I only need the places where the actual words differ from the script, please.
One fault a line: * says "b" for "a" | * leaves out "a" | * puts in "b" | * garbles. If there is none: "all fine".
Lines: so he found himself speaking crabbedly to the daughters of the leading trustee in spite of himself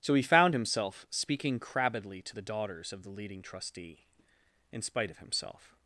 all fine